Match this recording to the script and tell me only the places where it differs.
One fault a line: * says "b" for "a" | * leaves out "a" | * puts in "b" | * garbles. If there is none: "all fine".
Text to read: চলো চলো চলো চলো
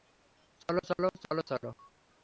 all fine